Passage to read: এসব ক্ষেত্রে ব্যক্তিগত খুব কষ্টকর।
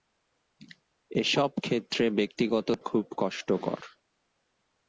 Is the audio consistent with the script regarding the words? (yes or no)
yes